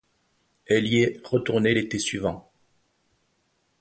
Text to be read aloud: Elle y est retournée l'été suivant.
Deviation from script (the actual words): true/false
false